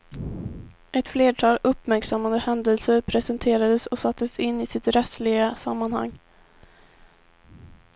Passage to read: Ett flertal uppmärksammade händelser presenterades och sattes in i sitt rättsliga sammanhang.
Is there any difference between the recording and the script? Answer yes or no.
no